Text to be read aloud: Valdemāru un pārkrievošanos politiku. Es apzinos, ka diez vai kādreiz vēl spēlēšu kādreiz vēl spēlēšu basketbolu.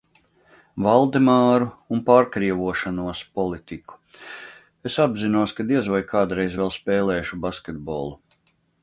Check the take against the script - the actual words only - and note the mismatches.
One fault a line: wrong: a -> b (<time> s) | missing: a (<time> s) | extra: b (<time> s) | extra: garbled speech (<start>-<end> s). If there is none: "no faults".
missing: kādreiz vēl spēlēšu (7.4 s)